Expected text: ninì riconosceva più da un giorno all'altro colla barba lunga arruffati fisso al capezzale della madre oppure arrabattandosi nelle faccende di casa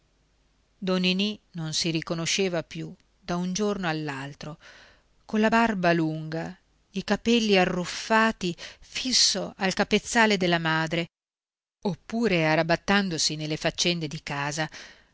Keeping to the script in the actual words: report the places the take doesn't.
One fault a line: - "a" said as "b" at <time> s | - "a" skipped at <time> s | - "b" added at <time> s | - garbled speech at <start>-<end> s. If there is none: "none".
- "non si" added at 1.5 s
- "i capelli" added at 6.9 s